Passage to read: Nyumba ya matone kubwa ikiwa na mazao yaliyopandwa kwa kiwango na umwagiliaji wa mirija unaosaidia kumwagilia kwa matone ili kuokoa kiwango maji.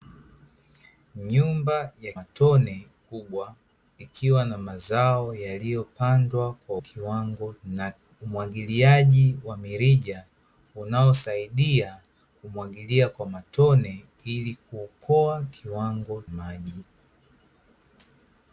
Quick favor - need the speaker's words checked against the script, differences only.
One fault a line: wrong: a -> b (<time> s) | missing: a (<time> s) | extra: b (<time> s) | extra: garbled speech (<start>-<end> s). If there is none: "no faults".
no faults